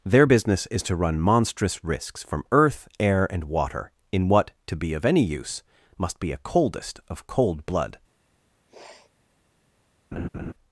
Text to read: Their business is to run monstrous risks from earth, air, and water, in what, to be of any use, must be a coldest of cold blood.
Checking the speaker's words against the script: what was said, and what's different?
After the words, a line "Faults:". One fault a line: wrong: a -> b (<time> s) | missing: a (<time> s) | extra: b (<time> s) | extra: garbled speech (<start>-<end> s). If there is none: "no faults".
Their business is to run monstrous risks from earth, air, and water, in what, to be of any use, must be a coldest of cold blood.
Faults:
no faults